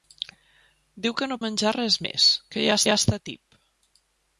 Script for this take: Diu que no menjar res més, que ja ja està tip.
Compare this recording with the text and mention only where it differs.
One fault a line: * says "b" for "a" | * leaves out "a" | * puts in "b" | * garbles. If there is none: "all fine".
all fine